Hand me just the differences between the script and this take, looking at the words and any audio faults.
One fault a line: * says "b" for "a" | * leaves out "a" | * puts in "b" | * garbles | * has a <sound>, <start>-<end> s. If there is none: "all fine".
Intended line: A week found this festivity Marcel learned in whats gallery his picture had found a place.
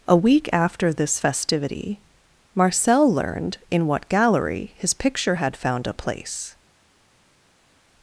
* says "after" for "found"
* says "what" for "whats"